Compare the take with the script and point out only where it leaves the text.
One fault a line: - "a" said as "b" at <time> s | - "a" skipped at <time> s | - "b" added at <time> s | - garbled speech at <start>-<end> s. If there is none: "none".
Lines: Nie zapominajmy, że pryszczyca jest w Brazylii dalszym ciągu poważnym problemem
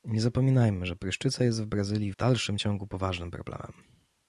none